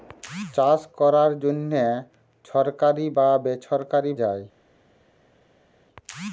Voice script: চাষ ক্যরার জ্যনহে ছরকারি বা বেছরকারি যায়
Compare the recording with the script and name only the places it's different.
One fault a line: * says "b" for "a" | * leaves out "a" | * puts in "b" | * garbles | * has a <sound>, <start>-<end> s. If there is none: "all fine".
all fine